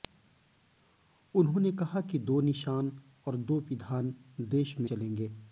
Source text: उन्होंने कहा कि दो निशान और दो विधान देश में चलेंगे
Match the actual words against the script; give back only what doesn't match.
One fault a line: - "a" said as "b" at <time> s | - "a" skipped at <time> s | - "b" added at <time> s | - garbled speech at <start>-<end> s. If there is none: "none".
none